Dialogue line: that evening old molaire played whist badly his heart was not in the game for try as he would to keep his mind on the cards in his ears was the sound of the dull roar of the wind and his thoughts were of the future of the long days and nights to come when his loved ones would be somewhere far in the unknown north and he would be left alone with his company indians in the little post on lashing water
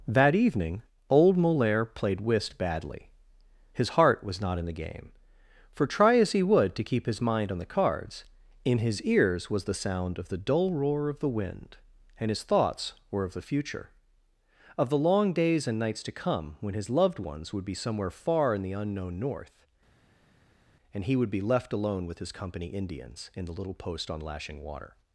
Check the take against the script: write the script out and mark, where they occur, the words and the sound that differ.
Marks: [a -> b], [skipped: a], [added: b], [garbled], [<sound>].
that evening old molaire played whist badly his heart was not in the game for try as he would to keep his mind on the cards in his ears was the sound of the dull roar of the wind and his thoughts were of the future of the long days and nights to come when his loved ones would be somewhere far in the unknown north and he would be left alone with his company indians in the little post on lashing water